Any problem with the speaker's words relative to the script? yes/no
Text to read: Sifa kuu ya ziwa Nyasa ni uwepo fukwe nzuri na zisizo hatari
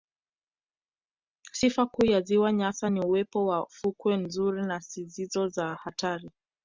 yes